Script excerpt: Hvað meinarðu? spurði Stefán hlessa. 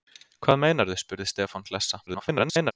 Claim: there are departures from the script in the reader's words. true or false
true